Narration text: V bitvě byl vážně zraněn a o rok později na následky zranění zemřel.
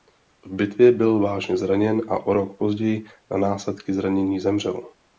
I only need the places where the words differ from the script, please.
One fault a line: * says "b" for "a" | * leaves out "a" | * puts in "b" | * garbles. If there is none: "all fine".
all fine